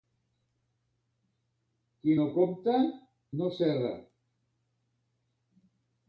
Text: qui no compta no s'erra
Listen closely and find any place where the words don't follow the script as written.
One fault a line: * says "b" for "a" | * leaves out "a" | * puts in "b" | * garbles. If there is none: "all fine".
all fine